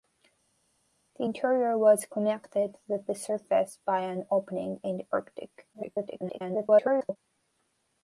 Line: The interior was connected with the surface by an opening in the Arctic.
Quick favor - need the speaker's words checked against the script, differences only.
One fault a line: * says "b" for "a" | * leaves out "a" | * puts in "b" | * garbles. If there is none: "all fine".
* garbles